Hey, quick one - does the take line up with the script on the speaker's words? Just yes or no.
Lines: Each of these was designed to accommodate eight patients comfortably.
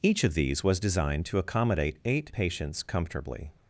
yes